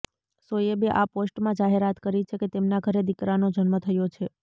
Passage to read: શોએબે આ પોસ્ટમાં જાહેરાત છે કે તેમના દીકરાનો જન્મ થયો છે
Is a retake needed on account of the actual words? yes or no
yes